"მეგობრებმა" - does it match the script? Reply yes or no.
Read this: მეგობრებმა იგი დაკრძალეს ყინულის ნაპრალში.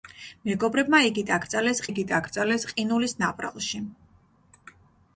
yes